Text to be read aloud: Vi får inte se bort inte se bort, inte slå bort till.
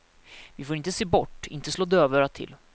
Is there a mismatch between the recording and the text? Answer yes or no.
yes